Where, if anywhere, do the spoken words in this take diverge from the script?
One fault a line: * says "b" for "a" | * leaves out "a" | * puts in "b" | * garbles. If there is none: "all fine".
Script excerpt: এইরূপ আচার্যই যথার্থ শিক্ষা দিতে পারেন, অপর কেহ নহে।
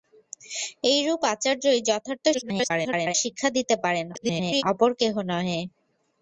* garbles
* garbles